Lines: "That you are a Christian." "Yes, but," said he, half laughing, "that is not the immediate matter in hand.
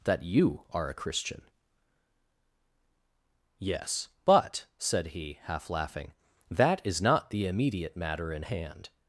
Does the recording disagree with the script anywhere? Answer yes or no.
no